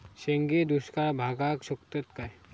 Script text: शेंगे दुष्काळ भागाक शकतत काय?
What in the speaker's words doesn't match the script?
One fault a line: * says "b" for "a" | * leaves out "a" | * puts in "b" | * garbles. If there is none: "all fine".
all fine